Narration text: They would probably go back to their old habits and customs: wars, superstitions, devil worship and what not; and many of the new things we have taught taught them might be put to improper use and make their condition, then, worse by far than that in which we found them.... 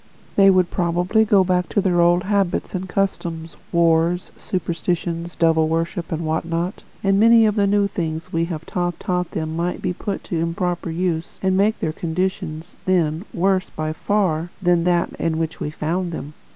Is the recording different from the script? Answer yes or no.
no